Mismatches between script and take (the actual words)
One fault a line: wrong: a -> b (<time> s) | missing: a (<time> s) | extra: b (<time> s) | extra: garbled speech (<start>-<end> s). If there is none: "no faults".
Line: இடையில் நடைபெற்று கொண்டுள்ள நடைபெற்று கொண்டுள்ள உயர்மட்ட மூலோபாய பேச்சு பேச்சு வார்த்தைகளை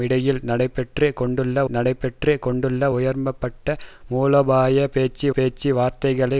no faults